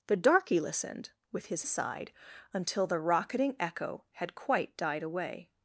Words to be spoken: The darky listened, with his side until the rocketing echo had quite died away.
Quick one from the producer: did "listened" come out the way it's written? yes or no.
yes